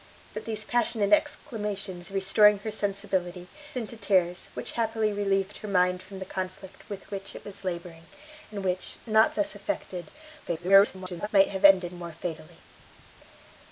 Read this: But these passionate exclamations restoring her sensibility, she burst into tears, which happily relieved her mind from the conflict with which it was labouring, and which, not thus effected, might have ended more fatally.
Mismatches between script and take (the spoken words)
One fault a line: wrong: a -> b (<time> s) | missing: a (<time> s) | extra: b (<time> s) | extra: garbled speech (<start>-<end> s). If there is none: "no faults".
missing: she burst (3.5 s)
extra: garbled speech (10.4-11.3 s)